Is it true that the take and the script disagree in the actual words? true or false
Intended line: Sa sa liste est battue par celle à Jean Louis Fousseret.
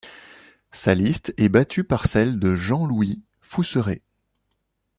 true